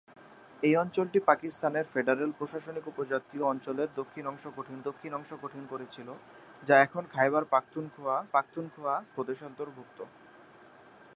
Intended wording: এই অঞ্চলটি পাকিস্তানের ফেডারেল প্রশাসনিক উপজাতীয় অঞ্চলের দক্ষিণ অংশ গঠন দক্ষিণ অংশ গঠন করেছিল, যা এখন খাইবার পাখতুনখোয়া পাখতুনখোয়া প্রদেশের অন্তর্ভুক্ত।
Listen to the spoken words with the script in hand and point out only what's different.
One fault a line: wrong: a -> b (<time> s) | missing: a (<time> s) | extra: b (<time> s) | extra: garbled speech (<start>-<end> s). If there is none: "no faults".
no faults